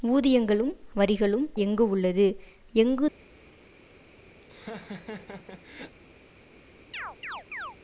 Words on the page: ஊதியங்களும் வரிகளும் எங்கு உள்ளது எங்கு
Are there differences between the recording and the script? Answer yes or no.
no